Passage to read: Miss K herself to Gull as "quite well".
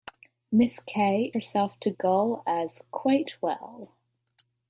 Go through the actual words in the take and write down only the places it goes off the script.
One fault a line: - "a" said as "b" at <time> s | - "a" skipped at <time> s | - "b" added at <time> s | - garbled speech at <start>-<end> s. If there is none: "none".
none